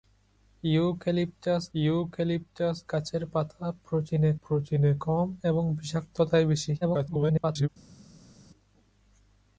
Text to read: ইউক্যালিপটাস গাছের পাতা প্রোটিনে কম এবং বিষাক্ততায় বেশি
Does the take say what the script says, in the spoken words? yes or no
no